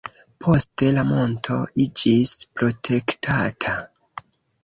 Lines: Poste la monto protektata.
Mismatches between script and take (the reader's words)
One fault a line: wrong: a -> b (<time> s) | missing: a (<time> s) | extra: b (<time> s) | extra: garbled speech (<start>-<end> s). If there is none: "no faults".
extra: iĝis (1.8 s)